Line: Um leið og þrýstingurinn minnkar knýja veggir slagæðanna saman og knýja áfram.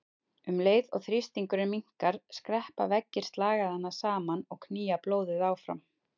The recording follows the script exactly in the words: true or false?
false